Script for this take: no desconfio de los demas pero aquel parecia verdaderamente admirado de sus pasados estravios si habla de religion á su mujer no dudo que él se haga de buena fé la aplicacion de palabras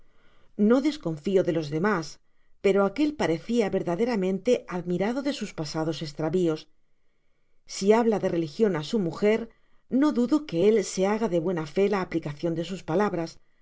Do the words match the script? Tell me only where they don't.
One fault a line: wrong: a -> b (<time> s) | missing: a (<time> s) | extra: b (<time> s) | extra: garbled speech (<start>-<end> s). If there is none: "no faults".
extra: sus (12.7 s)